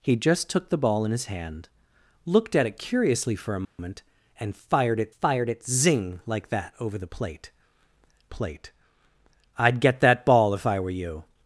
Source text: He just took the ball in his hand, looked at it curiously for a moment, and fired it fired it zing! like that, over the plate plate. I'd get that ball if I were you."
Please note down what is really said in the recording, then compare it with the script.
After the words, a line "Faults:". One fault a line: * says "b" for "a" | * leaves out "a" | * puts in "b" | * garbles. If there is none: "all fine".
He just took the ball in his hand, looked at it curiously for a moment, and fired it fired it zing! like that, over the plate plate. I'd get that ball if I were you."
Faults:
all fine